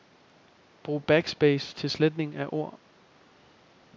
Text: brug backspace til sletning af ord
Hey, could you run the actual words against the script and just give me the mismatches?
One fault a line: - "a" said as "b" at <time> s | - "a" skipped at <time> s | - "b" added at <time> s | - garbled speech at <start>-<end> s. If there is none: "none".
none